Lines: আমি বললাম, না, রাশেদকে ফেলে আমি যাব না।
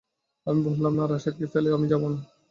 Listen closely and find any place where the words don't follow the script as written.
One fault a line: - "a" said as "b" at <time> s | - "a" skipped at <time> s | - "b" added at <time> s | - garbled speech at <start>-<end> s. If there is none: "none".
none